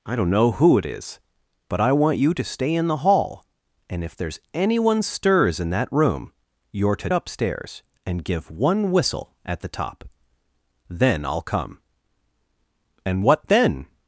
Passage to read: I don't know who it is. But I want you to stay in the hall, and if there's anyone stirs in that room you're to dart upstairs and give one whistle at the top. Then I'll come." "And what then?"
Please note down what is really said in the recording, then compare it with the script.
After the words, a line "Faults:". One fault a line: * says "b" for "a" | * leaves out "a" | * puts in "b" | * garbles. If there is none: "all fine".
I don't know who it is. But I want you to stay in the hall, and if there's anyone stirs in that room you're to upstairs and give one whistle at the top. Then I'll come." "And what then?"
Faults:
* leaves out "dart"